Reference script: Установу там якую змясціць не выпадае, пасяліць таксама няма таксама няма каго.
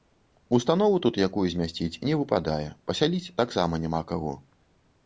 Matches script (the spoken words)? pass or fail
fail